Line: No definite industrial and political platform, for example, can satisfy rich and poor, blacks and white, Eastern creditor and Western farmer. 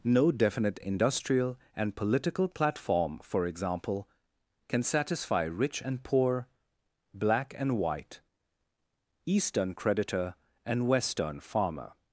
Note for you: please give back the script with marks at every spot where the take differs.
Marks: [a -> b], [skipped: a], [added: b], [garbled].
No definite industrial and political platform, for example, can satisfy rich and poor, [blacks -> black] and white, Eastern creditor and Western farmer.